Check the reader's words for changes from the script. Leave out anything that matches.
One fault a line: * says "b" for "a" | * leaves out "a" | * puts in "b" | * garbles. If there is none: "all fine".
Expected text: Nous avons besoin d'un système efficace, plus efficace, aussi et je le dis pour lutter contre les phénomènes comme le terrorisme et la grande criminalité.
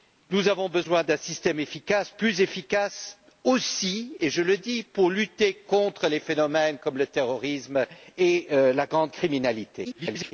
* garbles